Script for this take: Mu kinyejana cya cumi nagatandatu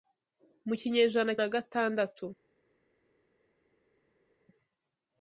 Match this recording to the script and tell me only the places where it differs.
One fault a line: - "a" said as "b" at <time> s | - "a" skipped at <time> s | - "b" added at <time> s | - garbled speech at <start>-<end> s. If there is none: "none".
- "cya cumi" skipped at 1.3 s